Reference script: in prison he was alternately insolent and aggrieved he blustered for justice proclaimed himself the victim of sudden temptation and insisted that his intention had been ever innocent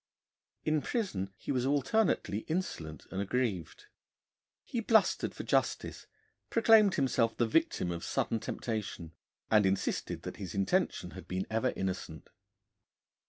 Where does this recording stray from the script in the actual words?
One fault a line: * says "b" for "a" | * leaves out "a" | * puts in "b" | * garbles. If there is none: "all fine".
all fine